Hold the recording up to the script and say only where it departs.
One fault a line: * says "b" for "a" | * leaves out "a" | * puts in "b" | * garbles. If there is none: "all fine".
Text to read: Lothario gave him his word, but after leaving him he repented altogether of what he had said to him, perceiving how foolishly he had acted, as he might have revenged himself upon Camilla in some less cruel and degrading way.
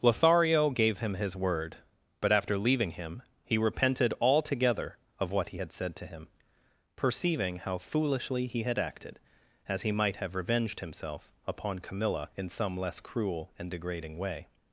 all fine